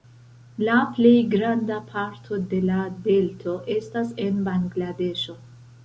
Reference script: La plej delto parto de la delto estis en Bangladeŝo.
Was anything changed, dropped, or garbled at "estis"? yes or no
yes